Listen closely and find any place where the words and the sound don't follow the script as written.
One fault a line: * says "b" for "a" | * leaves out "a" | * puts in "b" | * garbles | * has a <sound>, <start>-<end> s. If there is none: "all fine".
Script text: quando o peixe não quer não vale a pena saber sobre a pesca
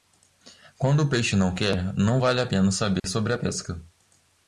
* has a dropout, 3.0-3.0 s